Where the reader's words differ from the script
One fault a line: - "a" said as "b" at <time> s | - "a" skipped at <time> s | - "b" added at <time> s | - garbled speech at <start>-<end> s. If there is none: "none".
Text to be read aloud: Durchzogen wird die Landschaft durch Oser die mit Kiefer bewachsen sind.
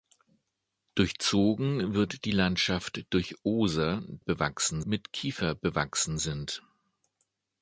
- "die" said as "bewachsen" at 4.2 s